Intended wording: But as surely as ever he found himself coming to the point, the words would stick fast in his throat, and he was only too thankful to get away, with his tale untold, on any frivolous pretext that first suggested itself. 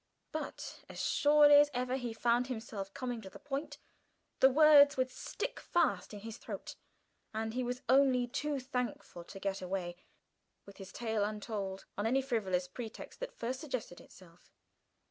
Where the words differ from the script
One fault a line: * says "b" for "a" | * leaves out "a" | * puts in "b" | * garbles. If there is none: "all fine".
all fine